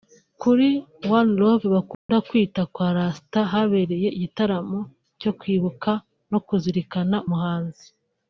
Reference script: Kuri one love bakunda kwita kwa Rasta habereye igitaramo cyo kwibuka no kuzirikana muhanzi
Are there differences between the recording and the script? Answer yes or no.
no